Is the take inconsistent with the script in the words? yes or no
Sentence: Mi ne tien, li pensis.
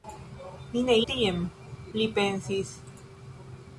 no